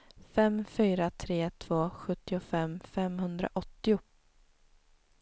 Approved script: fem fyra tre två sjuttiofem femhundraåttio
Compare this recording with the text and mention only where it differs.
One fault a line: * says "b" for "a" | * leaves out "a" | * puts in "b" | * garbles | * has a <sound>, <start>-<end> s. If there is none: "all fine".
all fine